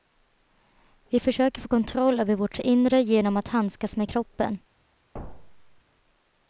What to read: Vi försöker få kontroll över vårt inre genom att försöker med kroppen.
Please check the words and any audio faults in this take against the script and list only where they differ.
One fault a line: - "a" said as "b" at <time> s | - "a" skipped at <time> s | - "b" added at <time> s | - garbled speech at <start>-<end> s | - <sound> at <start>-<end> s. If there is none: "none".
- "försöker" said as "handskas" at 3.5 s
- thud at 5.1-5.8 s